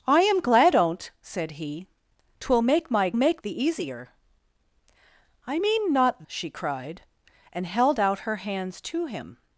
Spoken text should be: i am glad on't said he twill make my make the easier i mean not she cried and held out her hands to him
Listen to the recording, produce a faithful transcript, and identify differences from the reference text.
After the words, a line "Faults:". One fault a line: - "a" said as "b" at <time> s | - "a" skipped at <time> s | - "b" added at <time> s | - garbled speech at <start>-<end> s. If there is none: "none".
i am glad on't said he twill make my make the easier i mean not she cried and held out her hands to him
Faults:
none